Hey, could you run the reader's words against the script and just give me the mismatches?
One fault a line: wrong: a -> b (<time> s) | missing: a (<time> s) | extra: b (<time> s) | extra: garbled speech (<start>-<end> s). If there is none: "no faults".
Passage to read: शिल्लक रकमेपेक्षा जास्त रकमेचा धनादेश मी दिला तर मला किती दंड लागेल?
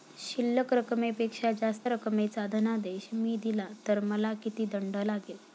no faults